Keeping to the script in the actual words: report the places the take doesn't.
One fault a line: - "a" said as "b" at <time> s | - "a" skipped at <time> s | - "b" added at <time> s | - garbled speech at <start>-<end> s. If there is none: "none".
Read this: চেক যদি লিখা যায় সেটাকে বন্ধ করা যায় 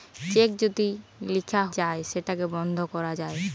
none